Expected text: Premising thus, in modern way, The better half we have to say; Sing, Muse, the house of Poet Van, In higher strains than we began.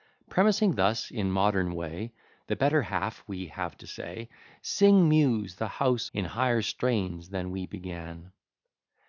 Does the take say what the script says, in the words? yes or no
no